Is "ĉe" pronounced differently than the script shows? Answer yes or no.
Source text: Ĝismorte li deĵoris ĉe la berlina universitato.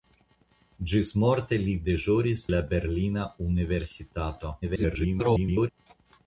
yes